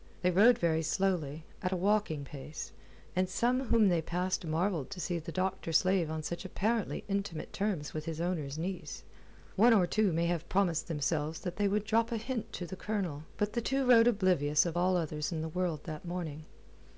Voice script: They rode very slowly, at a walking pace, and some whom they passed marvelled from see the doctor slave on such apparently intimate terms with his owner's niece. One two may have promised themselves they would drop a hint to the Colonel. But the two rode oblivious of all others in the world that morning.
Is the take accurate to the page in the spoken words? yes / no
no